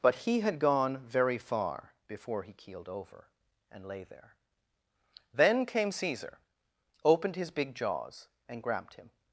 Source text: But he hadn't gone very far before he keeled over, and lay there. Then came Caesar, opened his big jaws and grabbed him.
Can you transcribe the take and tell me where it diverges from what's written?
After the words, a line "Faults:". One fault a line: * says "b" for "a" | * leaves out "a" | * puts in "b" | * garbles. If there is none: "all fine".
But he had gone very far before he keeled over, and lay there. Then came Caesar, opened his big jaws and grabbed him.
Faults:
* says "had" for "hadn't"